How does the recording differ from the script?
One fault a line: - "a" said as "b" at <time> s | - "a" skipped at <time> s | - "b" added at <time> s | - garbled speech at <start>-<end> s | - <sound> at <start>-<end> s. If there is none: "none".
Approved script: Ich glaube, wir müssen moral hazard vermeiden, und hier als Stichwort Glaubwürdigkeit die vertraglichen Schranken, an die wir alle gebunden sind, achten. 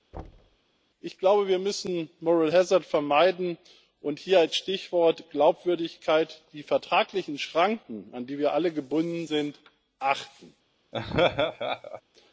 - thud at 0.1-0.6 s
- laugh at 10.9-12.0 s